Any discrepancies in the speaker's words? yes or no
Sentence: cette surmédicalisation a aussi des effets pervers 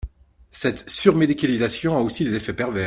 no